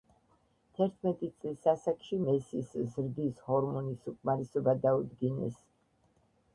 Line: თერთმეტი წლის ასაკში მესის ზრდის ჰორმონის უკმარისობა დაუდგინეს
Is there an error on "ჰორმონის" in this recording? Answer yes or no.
no